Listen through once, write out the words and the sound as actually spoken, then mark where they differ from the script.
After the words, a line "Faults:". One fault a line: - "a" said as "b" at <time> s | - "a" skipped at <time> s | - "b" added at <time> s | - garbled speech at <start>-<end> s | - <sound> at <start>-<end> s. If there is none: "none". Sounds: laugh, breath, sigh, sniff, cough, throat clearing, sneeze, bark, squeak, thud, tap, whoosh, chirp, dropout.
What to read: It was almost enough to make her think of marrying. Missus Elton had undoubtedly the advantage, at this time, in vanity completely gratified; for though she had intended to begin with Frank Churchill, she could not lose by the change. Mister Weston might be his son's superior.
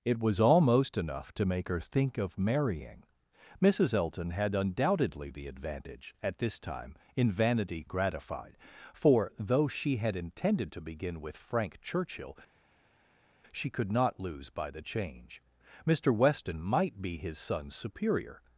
It was almost enough to make her think of marrying. Missus Elton had undoubtedly the advantage, at this time, in vanity gratified; for though she had intended to begin with Frank Churchill, she could not lose by the change. Mister Weston might be his son's superior.
Faults:
- "completely" skipped at 7.8 s